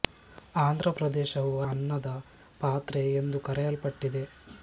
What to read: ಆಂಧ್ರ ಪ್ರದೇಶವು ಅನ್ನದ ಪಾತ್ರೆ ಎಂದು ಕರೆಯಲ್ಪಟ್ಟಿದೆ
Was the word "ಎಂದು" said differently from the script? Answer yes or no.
no